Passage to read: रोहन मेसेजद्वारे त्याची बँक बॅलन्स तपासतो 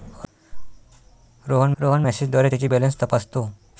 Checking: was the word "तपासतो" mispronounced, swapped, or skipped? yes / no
no